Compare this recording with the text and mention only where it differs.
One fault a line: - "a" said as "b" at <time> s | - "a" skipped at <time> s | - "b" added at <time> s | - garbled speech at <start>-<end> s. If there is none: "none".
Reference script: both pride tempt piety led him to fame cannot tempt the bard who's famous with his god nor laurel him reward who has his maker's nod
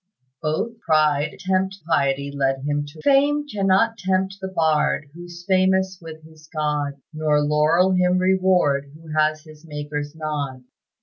none